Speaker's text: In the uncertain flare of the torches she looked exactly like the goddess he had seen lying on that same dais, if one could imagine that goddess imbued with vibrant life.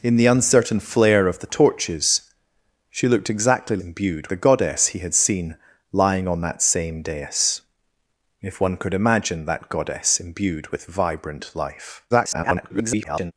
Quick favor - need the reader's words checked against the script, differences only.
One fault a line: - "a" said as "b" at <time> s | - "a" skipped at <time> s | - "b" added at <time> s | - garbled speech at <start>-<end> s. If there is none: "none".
- "like" said as "imbued" at 3.8 s
- garbled speech at 12.1-13.3 s